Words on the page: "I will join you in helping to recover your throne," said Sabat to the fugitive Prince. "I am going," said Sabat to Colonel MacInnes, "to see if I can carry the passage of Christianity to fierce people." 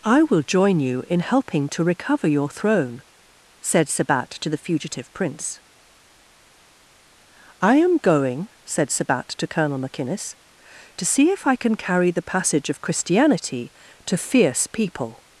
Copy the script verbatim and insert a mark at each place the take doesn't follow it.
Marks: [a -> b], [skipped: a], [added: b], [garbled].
"I will join you in helping to recover your throne," said Sabat to the fugitive Prince. "I am going," said Sabat to Colonel MacInnes, "to see if I can carry the passage of Christianity to fierce people."